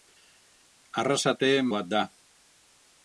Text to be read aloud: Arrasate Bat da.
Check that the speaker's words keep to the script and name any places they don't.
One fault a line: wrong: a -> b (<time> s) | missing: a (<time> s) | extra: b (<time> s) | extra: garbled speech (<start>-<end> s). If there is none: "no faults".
no faults